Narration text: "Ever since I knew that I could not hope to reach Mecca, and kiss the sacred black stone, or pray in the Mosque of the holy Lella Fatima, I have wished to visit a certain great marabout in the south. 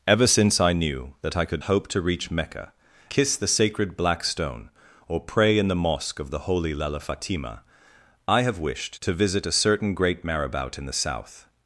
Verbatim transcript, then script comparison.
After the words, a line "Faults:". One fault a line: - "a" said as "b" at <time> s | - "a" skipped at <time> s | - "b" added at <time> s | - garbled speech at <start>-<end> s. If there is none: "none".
"Ever since I knew that I could hope to reach Mecca, kiss the sacred black stone, or pray in the Mosque of the holy Lella Fatima, I have wished to visit a certain great marabout in the south.
Faults:
- "not" skipped at 1.6 s
- "and" skipped at 2.7 s